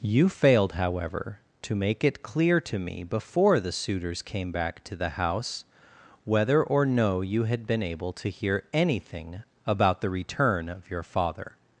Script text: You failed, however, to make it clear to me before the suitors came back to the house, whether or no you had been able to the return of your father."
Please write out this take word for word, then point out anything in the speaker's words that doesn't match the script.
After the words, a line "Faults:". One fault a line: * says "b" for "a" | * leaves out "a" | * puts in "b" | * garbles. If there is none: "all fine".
You failed, however, to make it clear to me before the suitors came back to the house, whether or no you had been able to hear anything about the return of your father."
Faults:
* puts in "hear anything about"